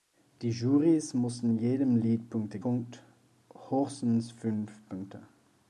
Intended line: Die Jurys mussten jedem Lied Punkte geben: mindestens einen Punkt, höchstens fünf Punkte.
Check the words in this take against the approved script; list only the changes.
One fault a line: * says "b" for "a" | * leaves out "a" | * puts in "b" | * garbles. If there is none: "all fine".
* leaves out "geben mindestens einen"